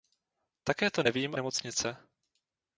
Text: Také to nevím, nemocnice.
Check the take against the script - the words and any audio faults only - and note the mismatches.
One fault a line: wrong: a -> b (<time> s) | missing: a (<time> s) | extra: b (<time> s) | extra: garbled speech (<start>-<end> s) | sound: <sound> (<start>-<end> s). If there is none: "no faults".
no faults